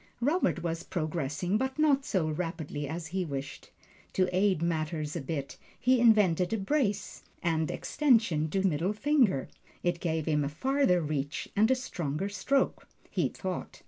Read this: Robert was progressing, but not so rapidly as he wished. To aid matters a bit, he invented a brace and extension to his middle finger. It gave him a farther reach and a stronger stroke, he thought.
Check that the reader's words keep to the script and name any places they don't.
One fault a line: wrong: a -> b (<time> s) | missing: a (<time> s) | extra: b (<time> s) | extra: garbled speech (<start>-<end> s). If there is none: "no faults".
missing: his (8.6 s)